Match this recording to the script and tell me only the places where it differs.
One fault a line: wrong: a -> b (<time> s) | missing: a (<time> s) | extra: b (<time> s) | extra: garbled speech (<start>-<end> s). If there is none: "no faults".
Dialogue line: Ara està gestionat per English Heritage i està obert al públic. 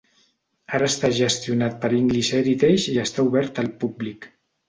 no faults